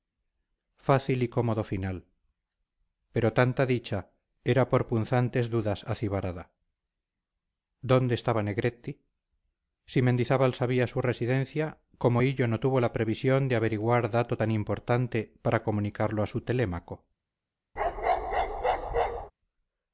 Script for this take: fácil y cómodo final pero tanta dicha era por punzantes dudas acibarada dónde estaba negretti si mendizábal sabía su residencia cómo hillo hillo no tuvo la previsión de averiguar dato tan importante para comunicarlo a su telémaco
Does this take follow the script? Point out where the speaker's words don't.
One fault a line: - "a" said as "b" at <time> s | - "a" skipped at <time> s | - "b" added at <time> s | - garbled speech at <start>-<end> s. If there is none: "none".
- "hillo" skipped at 12.5 s